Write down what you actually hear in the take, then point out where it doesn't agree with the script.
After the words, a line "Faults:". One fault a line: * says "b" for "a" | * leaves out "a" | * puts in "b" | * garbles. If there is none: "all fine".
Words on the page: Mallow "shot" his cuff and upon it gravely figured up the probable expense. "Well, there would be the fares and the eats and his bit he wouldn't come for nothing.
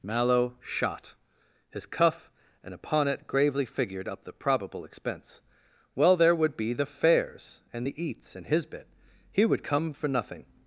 Mallow "shot" his cuff and upon it gravely figured up the probable expense. "Well, there would be the fares and the eats and his bit he would come for nothing.
Faults:
* says "would" for "wouldn't"